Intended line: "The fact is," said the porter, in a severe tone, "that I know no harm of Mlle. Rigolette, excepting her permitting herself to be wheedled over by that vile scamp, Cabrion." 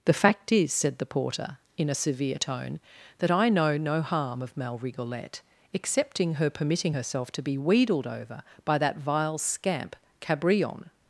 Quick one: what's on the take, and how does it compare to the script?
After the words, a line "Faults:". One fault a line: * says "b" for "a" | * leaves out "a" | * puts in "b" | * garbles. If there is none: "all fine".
"The fact is," said the porter, in a severe tone, "that I know no harm of Mlle. Rigolette, excepting her permitting herself to be wheedled over by that vile scamp, Cabrion."
Faults:
all fine